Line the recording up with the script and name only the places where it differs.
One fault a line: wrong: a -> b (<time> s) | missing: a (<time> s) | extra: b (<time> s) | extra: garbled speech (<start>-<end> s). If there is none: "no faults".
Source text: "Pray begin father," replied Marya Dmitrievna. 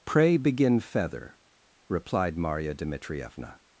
wrong: father -> feather (0.8 s)